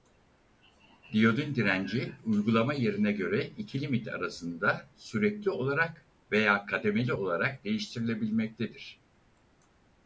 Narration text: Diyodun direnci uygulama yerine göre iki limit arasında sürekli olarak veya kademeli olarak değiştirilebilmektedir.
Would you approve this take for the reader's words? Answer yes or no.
yes